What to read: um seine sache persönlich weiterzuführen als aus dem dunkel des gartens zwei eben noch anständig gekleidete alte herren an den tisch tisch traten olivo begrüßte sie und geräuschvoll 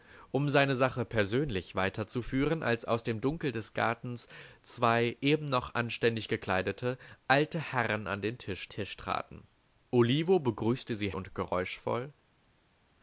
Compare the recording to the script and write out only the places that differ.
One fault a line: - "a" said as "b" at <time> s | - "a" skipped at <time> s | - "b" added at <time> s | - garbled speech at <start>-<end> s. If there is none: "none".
none